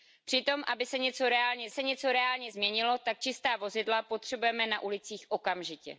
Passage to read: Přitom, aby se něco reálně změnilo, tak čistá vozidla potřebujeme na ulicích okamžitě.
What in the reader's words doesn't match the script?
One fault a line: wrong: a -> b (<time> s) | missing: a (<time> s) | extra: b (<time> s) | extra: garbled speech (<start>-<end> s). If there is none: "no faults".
extra: se něco reálně (1.7 s)